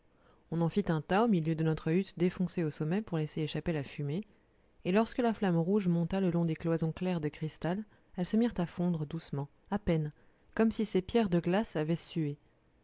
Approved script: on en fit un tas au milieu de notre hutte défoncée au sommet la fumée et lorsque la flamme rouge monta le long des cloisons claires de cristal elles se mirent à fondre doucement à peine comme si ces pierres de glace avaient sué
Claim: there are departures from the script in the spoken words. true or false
true